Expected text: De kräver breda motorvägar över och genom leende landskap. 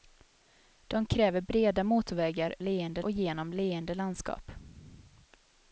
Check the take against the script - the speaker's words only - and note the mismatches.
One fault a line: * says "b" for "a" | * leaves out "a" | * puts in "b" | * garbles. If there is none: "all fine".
* says "leende" for "över"